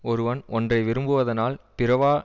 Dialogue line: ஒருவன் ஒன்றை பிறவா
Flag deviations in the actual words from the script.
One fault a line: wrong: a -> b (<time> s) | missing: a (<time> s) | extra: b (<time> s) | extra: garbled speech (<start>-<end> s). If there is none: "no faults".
extra: விரும்புவதனால் (0.8 s)